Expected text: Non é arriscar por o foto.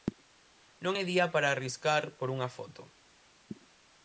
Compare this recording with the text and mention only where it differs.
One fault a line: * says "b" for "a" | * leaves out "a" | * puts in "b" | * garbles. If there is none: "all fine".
* puts in "día para"
* says "unha" for "o"